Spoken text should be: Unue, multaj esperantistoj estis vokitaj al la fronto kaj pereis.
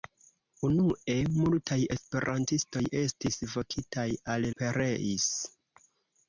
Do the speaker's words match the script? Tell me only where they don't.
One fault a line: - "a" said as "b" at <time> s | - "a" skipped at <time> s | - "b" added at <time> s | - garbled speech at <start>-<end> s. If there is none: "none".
- "la fronto kaj" skipped at 4.5 s